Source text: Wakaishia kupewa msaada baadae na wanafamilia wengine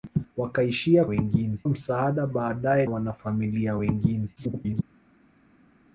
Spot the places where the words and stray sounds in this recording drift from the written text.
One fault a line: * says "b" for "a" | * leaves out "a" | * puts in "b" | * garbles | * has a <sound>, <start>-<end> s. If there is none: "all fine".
* says "wengine" for "kupewa"
* leaves out "na"
* garbles